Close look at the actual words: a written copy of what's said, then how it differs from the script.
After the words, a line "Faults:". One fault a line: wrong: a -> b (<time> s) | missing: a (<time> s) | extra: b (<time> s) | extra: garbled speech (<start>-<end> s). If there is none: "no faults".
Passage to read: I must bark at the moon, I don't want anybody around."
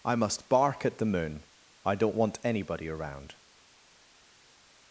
I must bark at the moon, I don't want anybody around."
Faults:
no faults